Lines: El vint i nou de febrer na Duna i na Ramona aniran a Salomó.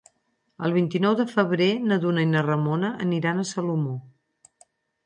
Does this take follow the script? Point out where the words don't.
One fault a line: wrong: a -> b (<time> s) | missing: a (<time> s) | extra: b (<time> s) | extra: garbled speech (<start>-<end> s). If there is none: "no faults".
no faults